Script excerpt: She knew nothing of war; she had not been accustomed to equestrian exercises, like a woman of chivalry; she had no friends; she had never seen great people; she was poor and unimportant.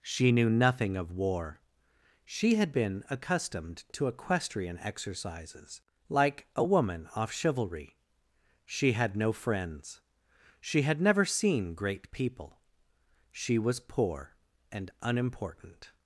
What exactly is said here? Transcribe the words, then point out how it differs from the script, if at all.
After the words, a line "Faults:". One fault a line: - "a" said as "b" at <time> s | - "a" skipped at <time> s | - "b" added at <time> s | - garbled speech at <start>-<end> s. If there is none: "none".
She knew nothing of war; she had been accustomed to equestrian exercises, like a woman off chivalry; she had no friends; she had never seen great people; she was poor and unimportant.
Faults:
- "not" skipped at 2.7 s
- "of" said as "off" at 7.2 s